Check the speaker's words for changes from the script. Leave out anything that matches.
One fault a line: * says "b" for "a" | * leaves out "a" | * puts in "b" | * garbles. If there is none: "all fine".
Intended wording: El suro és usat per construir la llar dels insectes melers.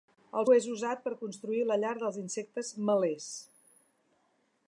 * leaves out "suro"